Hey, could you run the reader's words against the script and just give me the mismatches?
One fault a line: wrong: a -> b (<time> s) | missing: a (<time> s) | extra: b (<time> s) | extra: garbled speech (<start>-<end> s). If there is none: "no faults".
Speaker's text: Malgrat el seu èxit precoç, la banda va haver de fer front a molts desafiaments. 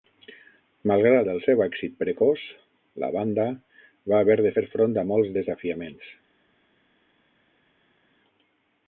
no faults